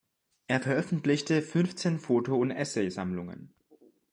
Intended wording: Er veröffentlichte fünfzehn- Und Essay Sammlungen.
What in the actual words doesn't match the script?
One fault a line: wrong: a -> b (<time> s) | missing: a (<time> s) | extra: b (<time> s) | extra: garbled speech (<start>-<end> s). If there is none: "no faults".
extra: Foto (2.0 s)